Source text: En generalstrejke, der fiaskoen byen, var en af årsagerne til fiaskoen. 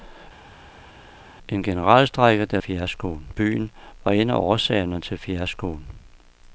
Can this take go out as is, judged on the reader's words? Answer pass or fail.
pass